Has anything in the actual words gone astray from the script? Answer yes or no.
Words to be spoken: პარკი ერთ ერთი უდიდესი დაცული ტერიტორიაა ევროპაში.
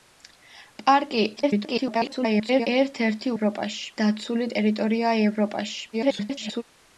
yes